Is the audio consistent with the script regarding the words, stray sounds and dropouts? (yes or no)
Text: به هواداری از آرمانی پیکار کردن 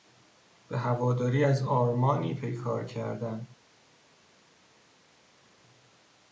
yes